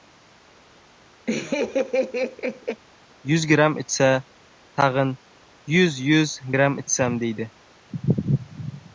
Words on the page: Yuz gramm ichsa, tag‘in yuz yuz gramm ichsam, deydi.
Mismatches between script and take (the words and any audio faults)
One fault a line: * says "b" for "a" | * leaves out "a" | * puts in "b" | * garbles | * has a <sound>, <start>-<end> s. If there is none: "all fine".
* has a laugh, 1.3-2.8 s